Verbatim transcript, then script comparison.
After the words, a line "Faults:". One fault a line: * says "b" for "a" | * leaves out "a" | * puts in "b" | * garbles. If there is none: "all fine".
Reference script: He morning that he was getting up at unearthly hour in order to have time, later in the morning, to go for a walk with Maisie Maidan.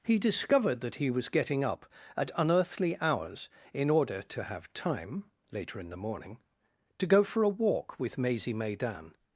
He discovered that he was getting up at unearthly hours in order to have time, later in the morning, to go for a walk with Maisie Maidan.
Faults:
* says "discovered" for "morning"
* says "hours" for "hour"